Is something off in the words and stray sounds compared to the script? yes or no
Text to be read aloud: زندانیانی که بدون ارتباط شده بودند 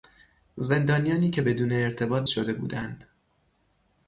no